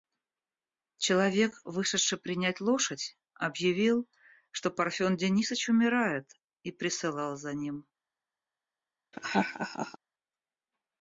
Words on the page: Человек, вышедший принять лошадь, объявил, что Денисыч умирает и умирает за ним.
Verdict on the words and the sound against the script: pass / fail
fail